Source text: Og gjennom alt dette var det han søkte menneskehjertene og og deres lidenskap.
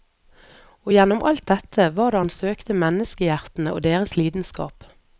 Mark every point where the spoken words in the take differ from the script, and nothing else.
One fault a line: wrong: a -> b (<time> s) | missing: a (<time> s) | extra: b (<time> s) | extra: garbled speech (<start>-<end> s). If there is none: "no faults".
missing: og (3.8 s)